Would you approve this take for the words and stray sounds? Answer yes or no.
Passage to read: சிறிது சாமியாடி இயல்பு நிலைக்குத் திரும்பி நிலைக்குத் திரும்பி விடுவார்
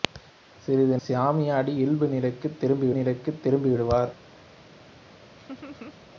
no